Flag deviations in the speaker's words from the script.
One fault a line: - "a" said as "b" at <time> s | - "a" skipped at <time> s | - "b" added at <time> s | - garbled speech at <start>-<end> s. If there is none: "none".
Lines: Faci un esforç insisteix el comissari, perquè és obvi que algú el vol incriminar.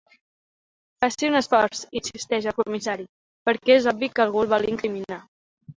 none